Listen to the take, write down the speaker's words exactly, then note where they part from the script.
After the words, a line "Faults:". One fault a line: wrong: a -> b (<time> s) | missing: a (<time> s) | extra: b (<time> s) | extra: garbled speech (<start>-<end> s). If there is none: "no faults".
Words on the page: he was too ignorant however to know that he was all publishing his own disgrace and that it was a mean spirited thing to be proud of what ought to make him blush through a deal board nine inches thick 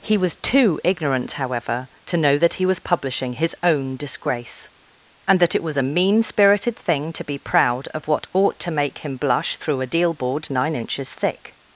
he was too ignorant however to know that he was publishing his own disgrace and that it was a mean spirited thing to be proud of what ought to make him blush through a deal board nine inches thick
Faults:
missing: all (2.8 s)